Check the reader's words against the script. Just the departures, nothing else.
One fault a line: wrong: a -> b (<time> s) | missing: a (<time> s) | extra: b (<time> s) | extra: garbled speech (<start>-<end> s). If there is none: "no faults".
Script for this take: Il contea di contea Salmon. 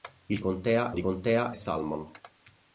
no faults